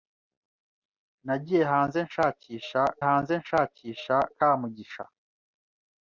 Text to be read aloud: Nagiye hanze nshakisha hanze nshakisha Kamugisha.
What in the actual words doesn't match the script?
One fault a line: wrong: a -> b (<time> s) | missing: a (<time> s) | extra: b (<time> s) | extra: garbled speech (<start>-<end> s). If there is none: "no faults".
no faults